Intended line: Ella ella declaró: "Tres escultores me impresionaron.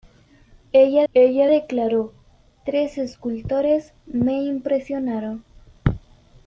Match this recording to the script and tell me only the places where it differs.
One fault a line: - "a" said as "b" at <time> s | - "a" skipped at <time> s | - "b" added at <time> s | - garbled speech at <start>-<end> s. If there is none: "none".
none